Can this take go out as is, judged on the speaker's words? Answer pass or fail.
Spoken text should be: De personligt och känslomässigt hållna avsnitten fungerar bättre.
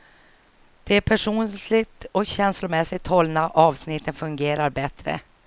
pass